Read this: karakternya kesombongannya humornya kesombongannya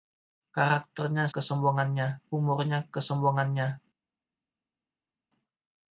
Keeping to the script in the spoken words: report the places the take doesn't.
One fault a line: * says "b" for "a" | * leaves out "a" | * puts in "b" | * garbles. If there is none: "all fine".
all fine